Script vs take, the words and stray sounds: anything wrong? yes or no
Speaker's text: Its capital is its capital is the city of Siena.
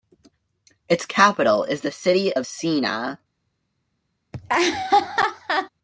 yes